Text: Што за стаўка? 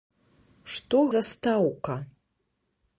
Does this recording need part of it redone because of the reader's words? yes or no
no